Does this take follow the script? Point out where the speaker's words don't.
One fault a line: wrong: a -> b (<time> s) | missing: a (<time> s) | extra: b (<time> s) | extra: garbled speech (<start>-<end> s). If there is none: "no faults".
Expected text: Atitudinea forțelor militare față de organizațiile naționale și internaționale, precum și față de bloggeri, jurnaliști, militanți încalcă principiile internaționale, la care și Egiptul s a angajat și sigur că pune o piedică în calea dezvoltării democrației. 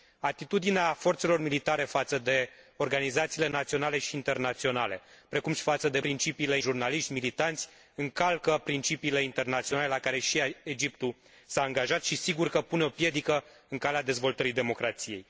wrong: bloggeri -> principiile (6.0 s)